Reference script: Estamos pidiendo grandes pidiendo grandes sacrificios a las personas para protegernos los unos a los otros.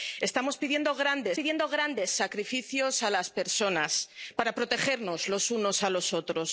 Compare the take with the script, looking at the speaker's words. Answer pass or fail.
pass